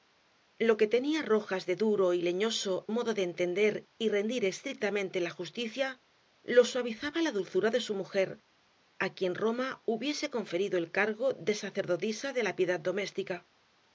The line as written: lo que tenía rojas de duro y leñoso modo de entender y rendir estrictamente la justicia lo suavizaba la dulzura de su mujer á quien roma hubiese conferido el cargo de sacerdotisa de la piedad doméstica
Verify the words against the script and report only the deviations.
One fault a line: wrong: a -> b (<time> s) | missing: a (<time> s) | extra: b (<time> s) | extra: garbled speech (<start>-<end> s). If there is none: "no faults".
no faults